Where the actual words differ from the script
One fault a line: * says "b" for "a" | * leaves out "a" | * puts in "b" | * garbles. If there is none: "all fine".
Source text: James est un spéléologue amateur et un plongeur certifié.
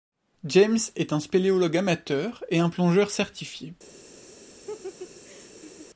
all fine